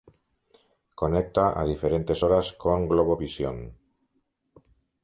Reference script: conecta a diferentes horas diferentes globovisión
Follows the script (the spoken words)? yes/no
no